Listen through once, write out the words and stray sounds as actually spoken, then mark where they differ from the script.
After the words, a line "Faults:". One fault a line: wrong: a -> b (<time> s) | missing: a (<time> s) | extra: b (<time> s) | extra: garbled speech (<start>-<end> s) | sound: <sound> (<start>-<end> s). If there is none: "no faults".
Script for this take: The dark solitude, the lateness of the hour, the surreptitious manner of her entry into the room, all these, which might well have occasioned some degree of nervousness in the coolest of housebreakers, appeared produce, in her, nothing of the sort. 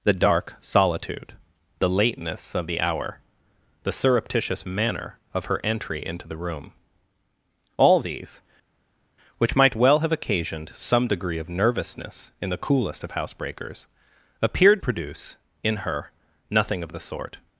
The dark solitude, the lateness of the hour, the surreptitious manner of her entry into the room, all these, which might well have occasioned some degree of nervousness in the coolest of housebreakers, appeared produce, in her, nothing of the sort.
Faults:
no faults